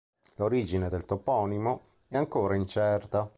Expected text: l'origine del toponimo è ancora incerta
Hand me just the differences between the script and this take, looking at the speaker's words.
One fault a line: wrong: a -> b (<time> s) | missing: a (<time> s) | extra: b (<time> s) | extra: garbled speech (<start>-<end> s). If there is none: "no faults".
no faults